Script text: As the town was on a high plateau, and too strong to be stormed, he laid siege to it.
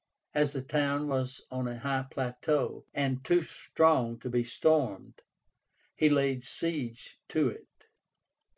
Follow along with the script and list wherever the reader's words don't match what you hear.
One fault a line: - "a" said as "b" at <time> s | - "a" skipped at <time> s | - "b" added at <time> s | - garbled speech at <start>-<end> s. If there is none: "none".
none